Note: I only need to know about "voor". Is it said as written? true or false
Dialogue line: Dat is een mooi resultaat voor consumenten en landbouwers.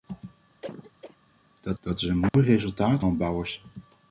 false